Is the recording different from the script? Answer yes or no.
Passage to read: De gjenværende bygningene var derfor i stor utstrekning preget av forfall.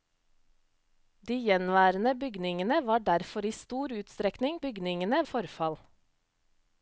yes